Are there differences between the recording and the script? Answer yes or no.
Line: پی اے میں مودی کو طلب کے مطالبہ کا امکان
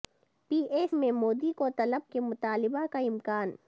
no